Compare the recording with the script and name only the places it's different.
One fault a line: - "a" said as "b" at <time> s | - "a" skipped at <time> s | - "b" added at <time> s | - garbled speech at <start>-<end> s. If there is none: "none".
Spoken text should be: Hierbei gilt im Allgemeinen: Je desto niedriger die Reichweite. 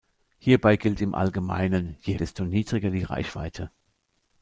none